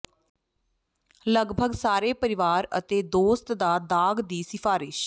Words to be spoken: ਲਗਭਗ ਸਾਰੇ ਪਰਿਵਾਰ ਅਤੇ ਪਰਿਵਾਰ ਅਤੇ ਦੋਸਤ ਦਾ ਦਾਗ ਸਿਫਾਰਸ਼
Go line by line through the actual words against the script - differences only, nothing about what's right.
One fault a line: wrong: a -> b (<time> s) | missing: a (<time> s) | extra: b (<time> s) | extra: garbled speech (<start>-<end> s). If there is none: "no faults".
missing: ਪਰਿਵਾਰ ਅਤੇ (3.0 s)
extra: ਦੀ (4.2 s)